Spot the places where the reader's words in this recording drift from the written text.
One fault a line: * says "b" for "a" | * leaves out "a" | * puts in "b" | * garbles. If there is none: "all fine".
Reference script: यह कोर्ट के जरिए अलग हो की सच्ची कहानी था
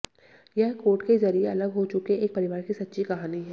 * puts in "चुके एक परिवार"
* says "है" for "था"